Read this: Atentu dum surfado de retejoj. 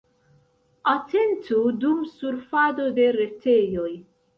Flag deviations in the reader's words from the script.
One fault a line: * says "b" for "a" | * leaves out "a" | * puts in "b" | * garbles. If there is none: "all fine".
all fine